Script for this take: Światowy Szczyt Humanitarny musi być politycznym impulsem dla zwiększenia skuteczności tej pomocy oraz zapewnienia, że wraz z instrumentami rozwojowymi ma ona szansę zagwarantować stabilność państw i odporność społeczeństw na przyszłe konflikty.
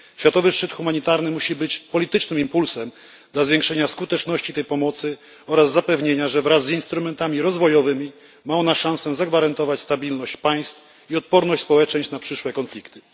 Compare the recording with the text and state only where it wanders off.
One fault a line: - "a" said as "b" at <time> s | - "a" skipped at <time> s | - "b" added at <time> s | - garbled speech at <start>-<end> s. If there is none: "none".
none